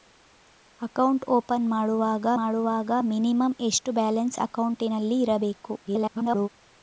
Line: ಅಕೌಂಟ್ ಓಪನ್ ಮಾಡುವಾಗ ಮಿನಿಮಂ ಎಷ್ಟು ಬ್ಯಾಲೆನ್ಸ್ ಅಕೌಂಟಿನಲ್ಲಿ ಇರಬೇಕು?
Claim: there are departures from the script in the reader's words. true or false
true